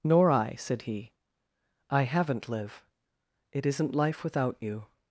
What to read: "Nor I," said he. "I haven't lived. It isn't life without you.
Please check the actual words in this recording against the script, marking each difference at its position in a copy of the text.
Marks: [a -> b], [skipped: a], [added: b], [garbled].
"Nor I," said he. "I haven't [lived. -> liv] It isn't life without you.